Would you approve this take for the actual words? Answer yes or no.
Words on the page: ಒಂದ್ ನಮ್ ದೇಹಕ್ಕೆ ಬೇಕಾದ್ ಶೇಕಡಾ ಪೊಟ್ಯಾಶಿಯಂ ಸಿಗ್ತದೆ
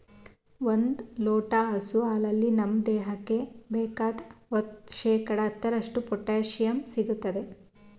no